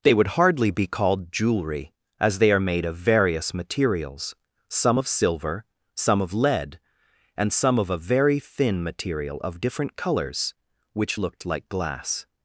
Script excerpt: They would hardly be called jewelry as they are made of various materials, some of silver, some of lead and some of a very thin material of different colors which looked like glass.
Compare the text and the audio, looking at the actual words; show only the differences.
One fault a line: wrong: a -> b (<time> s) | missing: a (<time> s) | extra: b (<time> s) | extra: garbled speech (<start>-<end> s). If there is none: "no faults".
no faults